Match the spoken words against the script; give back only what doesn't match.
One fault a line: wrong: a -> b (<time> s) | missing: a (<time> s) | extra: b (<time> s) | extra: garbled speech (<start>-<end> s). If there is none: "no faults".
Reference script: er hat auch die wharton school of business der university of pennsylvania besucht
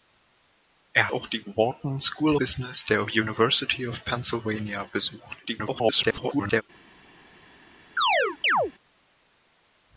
missing: hat (1.1 s)
missing: of (2.4 s)
extra: garbled speech (5.5-6.6 s)